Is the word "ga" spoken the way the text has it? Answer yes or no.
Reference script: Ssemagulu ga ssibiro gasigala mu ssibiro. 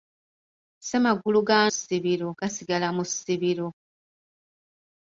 yes